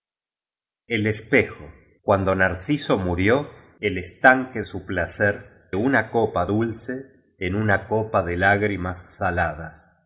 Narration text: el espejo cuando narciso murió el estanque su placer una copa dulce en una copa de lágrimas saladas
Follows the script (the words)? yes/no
yes